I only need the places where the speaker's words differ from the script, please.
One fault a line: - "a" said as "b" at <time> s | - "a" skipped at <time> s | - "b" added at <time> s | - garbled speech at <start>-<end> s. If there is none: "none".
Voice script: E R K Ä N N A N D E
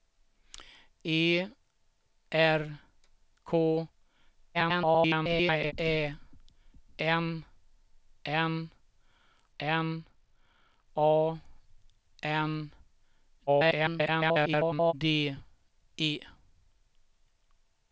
- garbled speech at 4.5-5.7 s
- "N" added at 9.6 s
- garbled speech at 13.5-14.9 s